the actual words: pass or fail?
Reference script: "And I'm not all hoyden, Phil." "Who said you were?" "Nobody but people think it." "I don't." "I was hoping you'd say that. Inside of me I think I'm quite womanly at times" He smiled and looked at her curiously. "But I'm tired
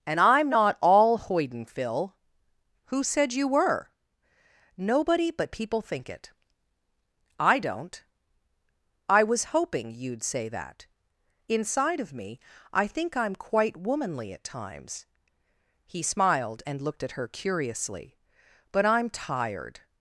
pass